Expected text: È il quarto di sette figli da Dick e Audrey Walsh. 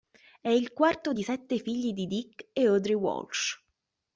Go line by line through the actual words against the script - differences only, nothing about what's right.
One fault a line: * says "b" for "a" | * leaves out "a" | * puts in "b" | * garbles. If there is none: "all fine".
* says "di" for "da"